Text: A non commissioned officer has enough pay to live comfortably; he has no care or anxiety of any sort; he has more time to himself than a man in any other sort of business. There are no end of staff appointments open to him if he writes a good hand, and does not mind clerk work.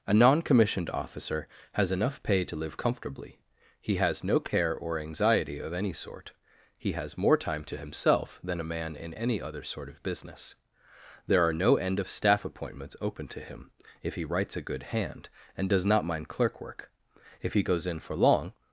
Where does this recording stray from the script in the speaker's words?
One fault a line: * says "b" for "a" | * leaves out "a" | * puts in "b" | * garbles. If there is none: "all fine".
* puts in "If he goes in for long"